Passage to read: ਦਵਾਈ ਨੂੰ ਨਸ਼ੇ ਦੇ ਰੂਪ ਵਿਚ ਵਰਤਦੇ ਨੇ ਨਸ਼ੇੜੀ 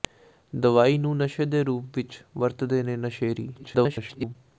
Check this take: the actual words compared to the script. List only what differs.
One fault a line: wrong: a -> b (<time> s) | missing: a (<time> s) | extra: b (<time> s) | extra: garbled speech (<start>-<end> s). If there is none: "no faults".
extra: garbled speech (3.5-4.4 s)